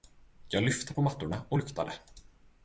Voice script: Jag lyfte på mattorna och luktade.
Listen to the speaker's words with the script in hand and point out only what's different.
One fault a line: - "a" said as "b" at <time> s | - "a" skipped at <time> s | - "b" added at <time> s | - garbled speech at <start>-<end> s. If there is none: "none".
none